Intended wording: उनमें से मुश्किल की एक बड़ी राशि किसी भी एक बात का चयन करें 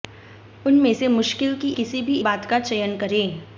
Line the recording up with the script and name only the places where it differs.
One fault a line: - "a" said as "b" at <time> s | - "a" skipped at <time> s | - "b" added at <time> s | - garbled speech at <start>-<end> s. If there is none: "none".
- "एक बड़ी राशि" skipped at 1.7 s
- "एक" skipped at 2.2 s